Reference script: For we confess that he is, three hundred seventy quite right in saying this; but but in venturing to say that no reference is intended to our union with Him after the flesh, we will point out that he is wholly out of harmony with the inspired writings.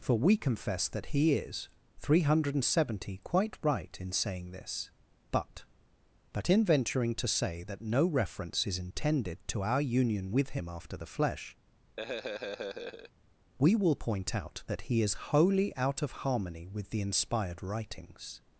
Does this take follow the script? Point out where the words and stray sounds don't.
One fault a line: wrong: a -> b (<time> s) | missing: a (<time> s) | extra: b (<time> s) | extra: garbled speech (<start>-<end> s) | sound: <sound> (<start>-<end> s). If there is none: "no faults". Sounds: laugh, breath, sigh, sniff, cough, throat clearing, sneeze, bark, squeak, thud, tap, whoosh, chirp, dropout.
sound: laugh (12.0-13.1 s)